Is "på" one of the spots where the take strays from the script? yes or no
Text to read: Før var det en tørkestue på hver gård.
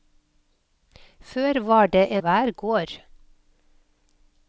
yes